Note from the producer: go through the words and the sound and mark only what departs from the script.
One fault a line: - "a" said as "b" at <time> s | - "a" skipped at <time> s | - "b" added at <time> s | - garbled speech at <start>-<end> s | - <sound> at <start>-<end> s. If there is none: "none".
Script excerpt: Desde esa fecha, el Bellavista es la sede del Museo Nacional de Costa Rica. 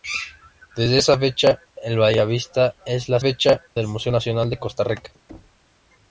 - "sede" said as "fecha" at 3.2 s
- thud at 5.3-5.7 s